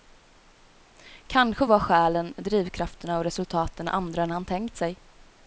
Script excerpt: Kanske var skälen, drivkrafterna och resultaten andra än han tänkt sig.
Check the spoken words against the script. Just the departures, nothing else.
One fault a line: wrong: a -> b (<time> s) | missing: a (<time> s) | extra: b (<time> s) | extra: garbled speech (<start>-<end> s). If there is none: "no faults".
no faults